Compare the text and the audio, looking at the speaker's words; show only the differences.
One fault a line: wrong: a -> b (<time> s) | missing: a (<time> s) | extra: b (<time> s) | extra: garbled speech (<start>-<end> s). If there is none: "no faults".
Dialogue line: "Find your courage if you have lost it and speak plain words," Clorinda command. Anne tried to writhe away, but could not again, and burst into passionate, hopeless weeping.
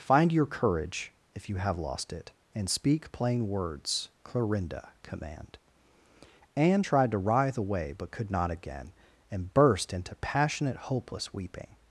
no faults